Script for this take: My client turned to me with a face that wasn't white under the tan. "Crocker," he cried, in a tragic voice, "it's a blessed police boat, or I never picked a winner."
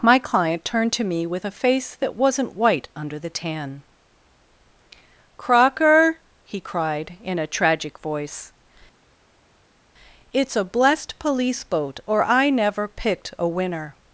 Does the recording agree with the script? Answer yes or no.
yes